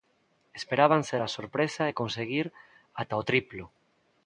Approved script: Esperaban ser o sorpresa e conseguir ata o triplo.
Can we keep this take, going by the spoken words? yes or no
no